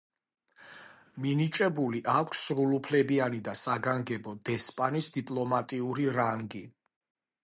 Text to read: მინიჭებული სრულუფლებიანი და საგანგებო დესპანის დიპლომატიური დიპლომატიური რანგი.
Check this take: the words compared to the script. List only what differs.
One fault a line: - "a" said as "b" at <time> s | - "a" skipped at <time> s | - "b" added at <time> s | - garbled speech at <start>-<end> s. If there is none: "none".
- "აქვს" added at 2.1 s
- "დიპლომატიური" skipped at 6.1 s